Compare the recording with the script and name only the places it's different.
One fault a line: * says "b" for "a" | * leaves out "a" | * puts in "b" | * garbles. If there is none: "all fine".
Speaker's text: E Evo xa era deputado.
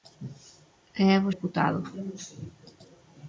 * leaves out "xa era"